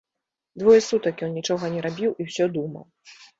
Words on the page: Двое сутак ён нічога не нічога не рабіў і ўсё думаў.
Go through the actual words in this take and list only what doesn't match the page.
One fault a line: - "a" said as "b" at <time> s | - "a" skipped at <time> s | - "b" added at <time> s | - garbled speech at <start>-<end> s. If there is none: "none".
- "нічога не" skipped at 1.8 s